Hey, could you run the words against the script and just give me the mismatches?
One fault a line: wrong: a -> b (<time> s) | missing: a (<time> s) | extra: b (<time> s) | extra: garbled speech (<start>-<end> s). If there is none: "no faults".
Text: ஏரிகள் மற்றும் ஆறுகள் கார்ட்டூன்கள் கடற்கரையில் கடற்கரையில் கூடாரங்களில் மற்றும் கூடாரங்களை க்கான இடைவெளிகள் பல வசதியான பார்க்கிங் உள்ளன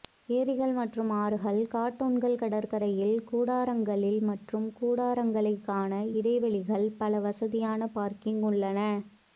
missing: கடற்கரையில் (3.2 s)